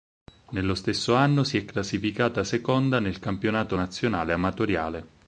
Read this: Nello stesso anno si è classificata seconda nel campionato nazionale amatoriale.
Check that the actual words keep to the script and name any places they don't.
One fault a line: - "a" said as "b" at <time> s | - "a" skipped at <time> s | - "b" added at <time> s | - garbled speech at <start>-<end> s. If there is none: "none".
none